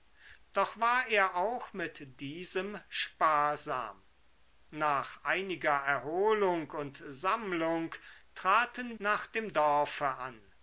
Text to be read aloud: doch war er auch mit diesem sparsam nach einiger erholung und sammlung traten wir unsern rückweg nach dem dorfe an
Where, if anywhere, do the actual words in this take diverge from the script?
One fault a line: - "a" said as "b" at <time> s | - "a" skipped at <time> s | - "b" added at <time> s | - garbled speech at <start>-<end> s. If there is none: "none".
- "wir unsern rückweg" skipped at 9.0 s